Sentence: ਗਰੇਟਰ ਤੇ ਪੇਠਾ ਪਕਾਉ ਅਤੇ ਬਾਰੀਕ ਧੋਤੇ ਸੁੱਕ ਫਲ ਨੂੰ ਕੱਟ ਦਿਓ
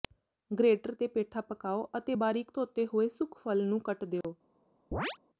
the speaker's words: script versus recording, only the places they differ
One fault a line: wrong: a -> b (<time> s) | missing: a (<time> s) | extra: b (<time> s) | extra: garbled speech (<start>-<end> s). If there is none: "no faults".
extra: ਹੋਏ (2.9 s)